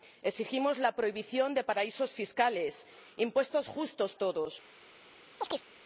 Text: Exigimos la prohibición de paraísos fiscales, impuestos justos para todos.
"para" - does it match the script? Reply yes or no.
no